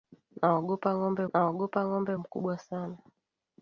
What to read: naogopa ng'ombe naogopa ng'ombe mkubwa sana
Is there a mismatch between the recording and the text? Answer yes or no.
no